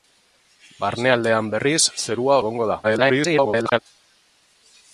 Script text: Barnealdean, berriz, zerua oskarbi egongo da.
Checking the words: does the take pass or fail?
fail